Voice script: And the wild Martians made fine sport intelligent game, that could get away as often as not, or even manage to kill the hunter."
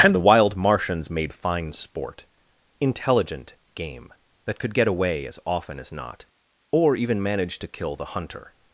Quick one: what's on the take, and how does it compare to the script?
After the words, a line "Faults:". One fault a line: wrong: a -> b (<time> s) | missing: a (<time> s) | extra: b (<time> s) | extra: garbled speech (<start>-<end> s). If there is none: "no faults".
And the wild Martians made fine sport intelligent game, that could get away as often as not, or even manage to kill the hunter."
Faults:
no faults